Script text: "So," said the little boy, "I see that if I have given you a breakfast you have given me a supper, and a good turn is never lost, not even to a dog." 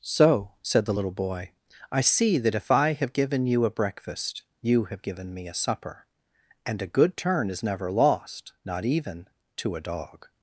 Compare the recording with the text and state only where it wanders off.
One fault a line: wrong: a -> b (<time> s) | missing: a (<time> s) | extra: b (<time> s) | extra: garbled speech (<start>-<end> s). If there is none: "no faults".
no faults